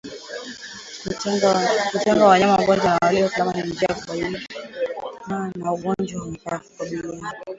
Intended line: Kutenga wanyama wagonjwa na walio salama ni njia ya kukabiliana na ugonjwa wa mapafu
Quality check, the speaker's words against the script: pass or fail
pass